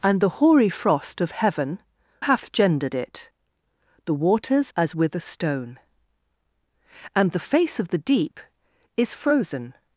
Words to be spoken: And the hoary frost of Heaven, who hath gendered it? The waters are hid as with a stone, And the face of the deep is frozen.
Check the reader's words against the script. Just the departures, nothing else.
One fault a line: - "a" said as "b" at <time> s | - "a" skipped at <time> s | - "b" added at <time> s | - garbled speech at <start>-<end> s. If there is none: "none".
- "who" skipped at 1.8 s
- "are hid" skipped at 4.7 s